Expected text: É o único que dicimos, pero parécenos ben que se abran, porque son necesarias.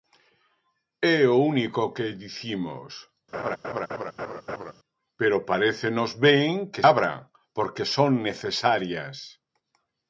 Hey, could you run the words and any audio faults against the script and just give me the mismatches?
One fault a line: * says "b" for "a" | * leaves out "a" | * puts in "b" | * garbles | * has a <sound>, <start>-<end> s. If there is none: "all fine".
* has a laugh, 3.3-4.7 s
* leaves out "se"